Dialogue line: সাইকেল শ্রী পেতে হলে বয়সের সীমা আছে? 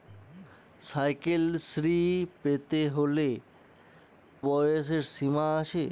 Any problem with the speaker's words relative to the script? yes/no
no